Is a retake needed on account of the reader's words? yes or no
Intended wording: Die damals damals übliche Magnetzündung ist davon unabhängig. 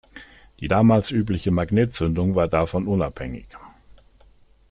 yes